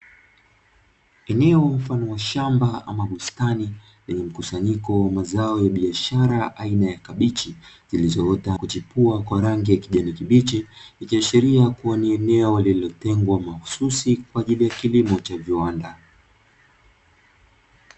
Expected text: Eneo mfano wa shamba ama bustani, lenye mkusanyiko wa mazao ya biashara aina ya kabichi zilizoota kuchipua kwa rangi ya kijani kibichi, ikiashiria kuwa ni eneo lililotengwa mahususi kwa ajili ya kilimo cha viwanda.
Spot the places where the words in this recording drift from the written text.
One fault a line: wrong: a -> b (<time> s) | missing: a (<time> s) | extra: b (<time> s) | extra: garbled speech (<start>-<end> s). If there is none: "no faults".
no faults